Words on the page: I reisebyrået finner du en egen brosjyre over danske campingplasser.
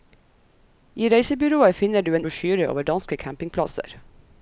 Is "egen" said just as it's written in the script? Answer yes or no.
no